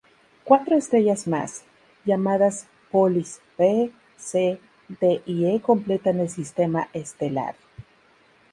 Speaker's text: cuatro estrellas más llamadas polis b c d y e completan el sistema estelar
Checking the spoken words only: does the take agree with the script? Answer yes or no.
yes